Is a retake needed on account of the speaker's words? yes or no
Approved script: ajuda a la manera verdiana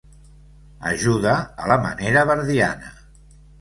no